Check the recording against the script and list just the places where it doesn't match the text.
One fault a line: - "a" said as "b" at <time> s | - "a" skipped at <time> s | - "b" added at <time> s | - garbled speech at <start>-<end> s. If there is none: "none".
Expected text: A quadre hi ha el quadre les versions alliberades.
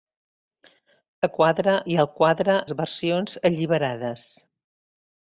none